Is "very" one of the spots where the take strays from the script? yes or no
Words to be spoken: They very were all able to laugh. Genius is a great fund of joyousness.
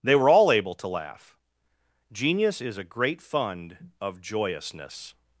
yes